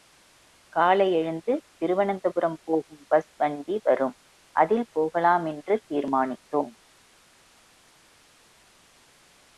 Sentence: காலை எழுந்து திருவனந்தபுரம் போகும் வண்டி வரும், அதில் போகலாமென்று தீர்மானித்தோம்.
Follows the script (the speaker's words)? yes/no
no